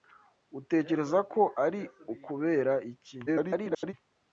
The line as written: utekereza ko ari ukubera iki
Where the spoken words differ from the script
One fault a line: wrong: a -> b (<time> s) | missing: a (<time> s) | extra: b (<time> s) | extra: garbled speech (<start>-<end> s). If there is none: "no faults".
extra: garbled speech (3.3-3.9 s)